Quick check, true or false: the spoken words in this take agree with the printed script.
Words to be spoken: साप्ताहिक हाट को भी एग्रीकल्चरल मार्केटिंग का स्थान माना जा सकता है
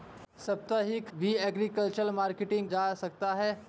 false